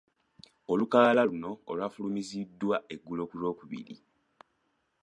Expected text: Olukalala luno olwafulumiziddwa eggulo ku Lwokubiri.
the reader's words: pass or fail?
pass